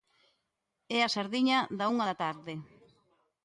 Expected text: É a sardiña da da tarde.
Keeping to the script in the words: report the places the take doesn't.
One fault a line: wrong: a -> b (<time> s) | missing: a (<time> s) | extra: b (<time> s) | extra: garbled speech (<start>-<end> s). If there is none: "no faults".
extra: unha (1.9 s)